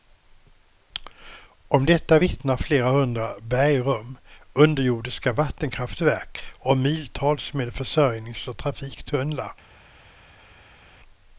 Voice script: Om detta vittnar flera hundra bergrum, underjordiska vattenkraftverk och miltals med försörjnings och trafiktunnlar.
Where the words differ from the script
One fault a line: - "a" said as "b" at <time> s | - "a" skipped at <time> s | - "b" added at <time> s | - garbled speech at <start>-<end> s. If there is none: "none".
none